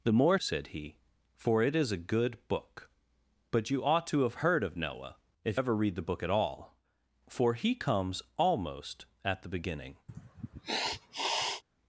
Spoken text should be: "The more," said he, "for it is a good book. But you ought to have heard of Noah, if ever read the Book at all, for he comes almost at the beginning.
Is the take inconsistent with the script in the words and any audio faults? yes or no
yes